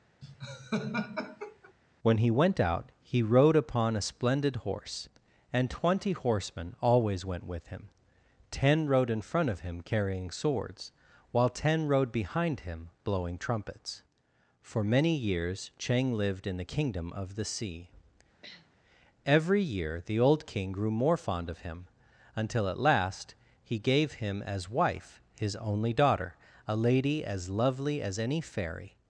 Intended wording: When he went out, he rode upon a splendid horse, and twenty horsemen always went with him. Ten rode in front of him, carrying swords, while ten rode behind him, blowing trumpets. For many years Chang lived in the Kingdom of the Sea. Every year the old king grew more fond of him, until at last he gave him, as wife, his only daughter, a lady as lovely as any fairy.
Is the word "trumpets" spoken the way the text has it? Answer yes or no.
yes